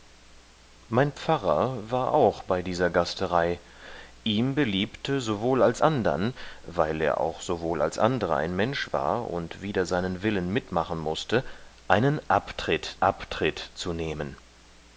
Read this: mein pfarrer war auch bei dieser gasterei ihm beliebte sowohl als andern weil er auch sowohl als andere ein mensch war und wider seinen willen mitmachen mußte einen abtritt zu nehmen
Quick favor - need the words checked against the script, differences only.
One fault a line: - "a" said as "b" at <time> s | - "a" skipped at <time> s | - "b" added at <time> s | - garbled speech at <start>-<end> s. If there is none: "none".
- "abtritt" added at 13.0 s